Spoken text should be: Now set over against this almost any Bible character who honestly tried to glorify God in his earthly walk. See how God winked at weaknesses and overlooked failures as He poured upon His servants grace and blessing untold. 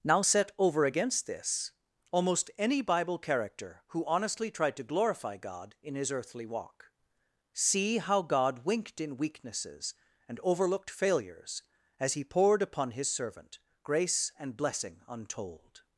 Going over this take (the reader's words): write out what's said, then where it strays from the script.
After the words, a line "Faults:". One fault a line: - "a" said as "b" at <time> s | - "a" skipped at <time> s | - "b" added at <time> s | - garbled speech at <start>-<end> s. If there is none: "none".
Now set over against this almost any Bible character who honestly tried to glorify God in his earthly walk. See how God winked in weaknesses and overlooked failures as He poured upon His servant grace and blessing untold.
Faults:
- "at" said as "in" at 9.0 s
- "servants" said as "servant" at 13.1 s